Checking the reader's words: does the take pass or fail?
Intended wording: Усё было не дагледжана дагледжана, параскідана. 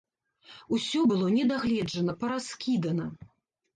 fail